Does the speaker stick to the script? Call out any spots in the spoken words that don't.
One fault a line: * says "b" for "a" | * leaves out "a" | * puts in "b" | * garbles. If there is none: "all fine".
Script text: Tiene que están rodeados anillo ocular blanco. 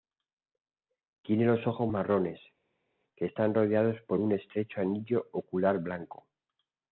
* puts in "los ojos marrones"
* puts in "por un estrecho"